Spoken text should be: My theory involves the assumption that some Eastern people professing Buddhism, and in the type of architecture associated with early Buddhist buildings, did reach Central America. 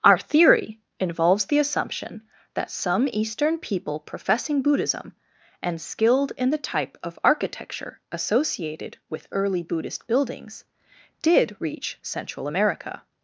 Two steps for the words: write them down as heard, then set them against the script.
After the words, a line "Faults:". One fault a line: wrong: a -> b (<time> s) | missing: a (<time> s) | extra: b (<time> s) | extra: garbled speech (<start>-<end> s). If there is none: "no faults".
Our theory involves the assumption that some Eastern people professing Buddhism, and skilled in the type of architecture associated with early Buddhist buildings, did reach Central America.
Faults:
wrong: My -> Our (0.0 s)
extra: skilled (5.8 s)